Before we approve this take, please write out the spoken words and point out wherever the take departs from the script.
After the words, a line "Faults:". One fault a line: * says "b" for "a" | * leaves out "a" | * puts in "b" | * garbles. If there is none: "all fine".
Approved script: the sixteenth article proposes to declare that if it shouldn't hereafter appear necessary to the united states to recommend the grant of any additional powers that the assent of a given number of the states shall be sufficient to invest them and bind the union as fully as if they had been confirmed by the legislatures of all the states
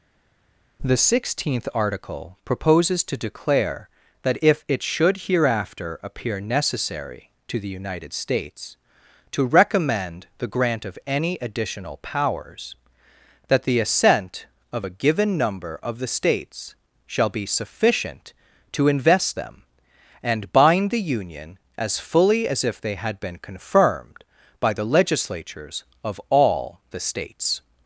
the sixteenth article proposes to declare that if it should hereafter appear necessary to the united states to recommend the grant of any additional powers that the assent of a given number of the states shall be sufficient to invest them and bind the union as fully as if they had been confirmed by the legislatures of all the states
Faults:
* says "should" for "shouldn't"